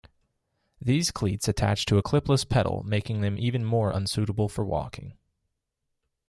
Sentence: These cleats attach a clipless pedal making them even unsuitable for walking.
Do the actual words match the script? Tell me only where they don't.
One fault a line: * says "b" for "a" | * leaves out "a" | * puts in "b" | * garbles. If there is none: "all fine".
* puts in "to"
* puts in "more"